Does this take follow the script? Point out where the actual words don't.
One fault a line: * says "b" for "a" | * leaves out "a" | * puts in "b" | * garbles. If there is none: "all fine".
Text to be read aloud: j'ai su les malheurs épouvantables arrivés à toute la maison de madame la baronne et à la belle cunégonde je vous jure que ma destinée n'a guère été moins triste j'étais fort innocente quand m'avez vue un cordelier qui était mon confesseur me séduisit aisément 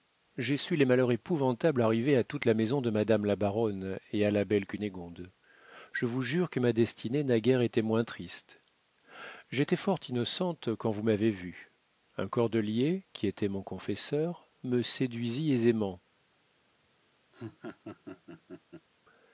* puts in "vous"